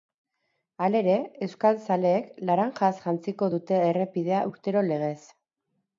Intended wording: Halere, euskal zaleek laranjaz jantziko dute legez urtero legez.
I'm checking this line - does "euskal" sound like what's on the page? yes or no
yes